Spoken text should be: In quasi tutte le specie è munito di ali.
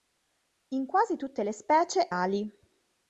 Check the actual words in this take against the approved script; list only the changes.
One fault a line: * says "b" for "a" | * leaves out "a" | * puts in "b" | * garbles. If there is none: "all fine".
* leaves out "è munito di"